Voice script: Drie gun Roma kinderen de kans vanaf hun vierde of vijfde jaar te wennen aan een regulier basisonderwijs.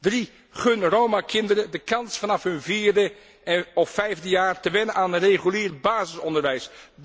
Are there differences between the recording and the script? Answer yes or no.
no